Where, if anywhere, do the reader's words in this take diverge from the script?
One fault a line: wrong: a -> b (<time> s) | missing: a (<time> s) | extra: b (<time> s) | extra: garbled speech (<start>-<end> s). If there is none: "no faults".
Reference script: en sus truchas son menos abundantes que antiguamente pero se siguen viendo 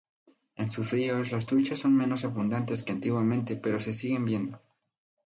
extra: ríos las (0.9 s)